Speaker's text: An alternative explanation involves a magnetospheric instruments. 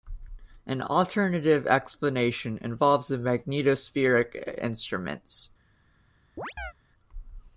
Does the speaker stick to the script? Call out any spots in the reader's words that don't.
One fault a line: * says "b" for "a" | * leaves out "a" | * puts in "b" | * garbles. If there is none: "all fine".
all fine